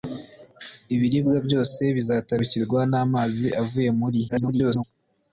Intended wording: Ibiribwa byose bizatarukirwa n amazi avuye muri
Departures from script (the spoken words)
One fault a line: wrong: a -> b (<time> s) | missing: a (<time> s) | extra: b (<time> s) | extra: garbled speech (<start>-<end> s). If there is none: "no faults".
extra: garbled speech (4.3-4.8 s)